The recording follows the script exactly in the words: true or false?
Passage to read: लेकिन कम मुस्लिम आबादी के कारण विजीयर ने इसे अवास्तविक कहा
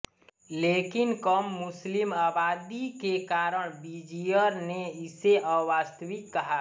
true